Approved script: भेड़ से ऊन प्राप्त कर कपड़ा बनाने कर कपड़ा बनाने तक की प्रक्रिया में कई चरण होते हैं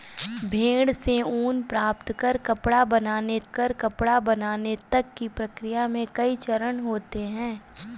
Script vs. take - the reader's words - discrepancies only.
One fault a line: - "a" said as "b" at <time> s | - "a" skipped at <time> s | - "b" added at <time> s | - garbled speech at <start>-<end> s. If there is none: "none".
none